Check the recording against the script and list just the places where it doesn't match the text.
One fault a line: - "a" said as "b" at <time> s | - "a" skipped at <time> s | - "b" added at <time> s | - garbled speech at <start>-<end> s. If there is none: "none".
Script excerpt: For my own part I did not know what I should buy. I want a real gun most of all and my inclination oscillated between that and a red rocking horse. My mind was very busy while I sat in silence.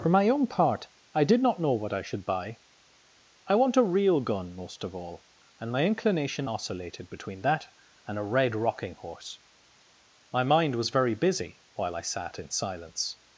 none